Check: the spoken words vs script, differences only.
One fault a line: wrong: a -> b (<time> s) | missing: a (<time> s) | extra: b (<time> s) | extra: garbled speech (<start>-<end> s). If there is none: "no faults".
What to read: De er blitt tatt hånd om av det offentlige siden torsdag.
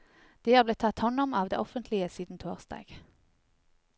no faults